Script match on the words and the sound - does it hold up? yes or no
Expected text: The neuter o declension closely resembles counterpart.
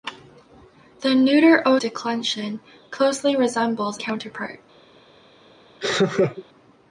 no